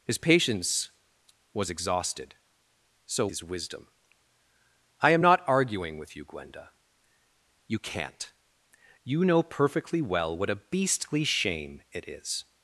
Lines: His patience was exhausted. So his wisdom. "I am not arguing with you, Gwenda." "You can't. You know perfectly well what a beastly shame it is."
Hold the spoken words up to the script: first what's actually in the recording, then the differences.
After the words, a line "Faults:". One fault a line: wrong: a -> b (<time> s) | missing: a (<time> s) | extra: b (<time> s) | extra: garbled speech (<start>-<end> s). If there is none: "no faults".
His patience was exhausted. So his wisdom. "I am not arguing with you, Gwenda." "You can't. You know perfectly well what a beastly shame it is."
Faults:
no faults